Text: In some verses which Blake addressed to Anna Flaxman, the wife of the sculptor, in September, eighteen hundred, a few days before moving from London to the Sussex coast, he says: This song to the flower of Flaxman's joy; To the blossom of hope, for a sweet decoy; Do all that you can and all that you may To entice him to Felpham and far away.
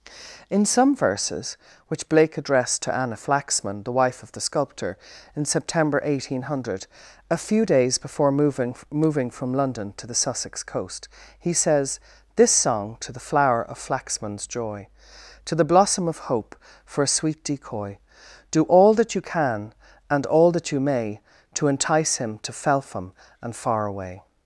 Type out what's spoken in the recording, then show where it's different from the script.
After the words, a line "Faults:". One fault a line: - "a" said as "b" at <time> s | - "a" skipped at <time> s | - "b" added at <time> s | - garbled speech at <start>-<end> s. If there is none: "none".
In some verses which Blake addressed to Anna Flaxman, the wife of the sculptor, in September, eighteen hundred, a few days before moving moving from London to the Sussex coast, he says: This song to the flower of Flaxman's joy; To the blossom of hope, for a sweet decoy; Do all that you can and all that you may To entice him to Felpham and far away.
Faults:
- "moving" added at 8.9 s